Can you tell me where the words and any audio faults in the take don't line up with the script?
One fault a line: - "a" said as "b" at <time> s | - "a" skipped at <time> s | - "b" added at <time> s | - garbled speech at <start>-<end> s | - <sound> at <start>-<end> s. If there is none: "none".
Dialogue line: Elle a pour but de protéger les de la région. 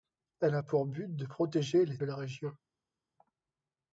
none